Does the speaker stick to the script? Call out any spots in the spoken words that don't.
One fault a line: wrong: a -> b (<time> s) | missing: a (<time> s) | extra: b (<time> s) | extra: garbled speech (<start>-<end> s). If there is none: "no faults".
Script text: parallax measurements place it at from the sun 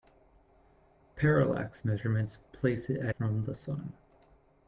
no faults